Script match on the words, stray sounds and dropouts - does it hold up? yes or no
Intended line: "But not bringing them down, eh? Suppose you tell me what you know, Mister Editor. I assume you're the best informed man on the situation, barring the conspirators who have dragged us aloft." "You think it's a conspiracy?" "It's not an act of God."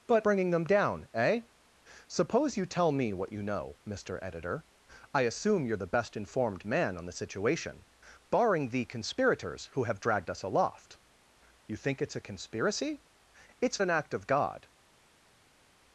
no